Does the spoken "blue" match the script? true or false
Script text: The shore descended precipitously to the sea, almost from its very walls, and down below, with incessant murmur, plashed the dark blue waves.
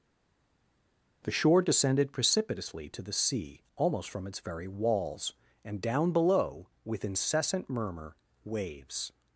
false